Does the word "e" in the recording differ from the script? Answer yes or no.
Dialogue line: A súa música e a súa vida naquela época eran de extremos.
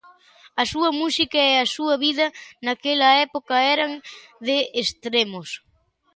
no